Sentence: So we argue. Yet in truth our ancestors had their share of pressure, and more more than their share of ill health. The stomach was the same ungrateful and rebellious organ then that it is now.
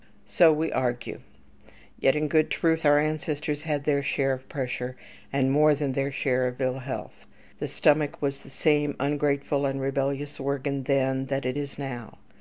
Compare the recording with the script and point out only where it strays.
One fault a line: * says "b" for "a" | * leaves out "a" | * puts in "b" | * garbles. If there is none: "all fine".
* puts in "good"
* leaves out "more"